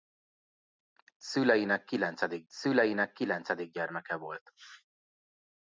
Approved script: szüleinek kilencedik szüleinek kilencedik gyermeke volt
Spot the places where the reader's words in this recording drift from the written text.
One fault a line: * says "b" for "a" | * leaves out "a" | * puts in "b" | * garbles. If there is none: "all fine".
all fine